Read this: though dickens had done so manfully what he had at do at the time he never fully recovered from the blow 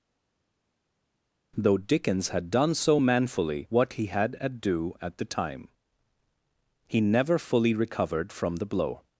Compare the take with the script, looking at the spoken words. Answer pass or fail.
pass